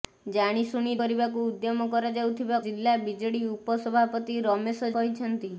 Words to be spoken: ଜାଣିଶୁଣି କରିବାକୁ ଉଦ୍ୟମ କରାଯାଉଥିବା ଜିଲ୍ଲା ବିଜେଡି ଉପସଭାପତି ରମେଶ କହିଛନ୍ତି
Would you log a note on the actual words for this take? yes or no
no